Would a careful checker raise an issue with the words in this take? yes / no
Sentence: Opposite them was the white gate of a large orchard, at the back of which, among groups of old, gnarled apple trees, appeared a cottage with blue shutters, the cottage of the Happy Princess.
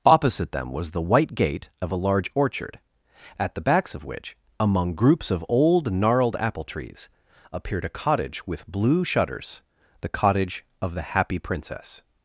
yes